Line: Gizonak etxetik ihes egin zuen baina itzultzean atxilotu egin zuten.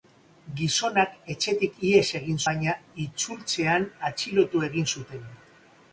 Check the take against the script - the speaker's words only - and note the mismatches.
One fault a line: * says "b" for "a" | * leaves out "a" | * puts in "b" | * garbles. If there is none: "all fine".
* leaves out "zuen"